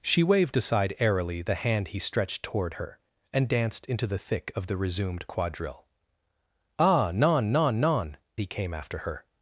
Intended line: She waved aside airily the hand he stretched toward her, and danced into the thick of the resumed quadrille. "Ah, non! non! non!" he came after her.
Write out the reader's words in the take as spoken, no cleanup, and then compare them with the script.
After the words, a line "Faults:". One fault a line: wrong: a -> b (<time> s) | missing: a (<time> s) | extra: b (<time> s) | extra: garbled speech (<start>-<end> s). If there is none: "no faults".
She waved aside airily the hand he stretched toward her, and danced into the thick of the resumed quadrille. "Ah, non! non! non!" he came after her.
Faults:
no faults